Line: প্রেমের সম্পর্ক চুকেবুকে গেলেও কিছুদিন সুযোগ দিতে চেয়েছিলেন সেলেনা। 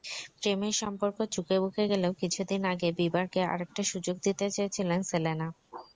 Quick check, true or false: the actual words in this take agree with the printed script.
false